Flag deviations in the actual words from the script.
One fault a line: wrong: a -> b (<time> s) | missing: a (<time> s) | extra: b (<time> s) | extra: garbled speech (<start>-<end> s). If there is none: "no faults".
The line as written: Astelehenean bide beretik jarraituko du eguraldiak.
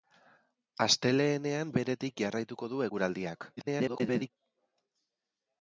missing: bide (1.8 s)
extra: garbled speech (3.6-4.3 s)